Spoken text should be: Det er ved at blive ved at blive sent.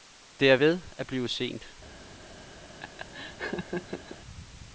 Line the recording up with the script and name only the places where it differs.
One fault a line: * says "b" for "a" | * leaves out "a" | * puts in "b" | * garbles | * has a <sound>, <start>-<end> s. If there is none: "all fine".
* leaves out "ved at blive"
* has a laugh, 2.8-4.2 s